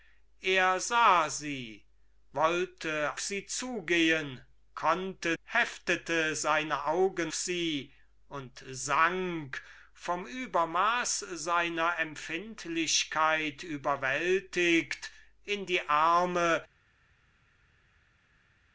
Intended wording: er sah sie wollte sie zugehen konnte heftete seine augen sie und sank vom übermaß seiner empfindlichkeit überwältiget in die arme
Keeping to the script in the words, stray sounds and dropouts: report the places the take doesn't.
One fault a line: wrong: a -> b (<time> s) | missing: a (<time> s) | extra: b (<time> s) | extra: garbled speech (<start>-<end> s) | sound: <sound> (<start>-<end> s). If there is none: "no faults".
no faults